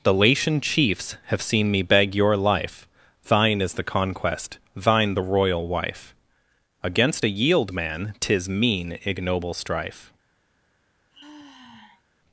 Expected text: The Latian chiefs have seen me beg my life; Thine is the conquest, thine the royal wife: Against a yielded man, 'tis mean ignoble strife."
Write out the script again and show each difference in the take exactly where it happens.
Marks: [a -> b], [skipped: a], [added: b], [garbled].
The Latian chiefs have seen me beg [my -> your] life; Thine is the conquest, thine the royal wife: Against a [yielded -> yield] man, 'tis mean ignoble strife."